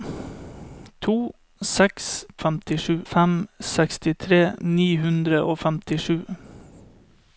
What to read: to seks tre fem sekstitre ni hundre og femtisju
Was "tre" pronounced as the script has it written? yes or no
no